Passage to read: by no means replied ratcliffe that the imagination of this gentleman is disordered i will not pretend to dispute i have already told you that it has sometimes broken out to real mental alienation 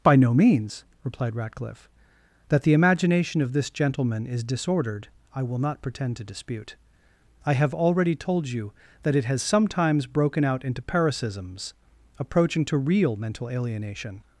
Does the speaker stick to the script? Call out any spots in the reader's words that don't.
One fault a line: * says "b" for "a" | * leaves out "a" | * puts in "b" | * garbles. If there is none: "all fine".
* puts in "into paroxysms approaching"